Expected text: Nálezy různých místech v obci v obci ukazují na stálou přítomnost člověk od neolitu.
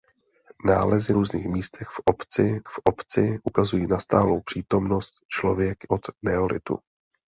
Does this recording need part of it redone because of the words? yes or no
no